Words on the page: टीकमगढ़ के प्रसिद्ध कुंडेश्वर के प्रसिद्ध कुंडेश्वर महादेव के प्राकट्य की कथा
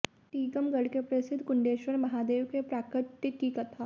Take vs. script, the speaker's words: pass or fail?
fail